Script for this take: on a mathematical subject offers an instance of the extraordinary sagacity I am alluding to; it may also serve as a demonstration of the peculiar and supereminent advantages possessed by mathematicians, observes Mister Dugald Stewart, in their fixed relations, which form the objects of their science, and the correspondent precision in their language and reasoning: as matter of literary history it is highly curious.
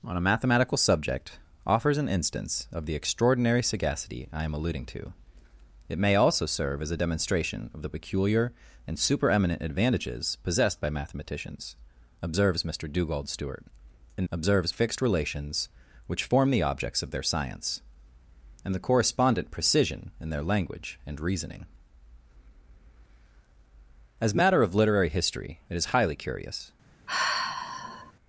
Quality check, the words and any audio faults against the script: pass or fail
fail